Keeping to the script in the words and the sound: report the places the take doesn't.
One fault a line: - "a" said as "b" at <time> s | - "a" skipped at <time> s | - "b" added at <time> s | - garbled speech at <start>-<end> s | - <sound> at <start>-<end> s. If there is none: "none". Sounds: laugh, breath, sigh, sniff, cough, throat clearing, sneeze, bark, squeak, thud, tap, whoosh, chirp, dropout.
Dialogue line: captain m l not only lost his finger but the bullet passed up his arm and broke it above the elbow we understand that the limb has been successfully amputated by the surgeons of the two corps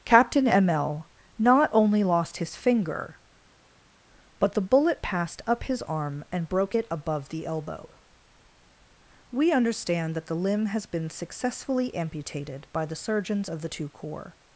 none